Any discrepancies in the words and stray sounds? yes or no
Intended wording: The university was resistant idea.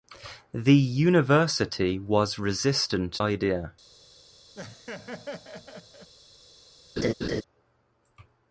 yes